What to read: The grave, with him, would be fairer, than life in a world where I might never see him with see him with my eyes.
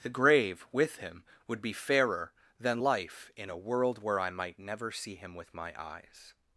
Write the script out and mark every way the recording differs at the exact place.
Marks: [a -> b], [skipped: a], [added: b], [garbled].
The grave, with him, would be fairer, than life in a world where I might never see him with [skipped: see him with] my eyes.